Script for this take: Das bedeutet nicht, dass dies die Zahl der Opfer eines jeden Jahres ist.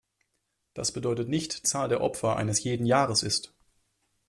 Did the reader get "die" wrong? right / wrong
wrong